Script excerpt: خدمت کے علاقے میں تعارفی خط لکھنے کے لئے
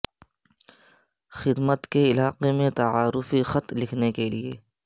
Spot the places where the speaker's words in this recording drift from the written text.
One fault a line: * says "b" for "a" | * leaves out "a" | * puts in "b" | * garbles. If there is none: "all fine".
all fine